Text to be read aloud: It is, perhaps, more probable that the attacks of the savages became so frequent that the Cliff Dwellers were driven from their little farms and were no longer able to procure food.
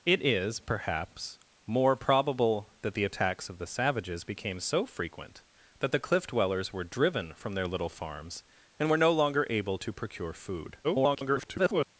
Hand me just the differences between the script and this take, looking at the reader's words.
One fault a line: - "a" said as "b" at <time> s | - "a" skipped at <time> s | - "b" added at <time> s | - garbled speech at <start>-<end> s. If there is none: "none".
- garbled speech at 10.8-11.9 s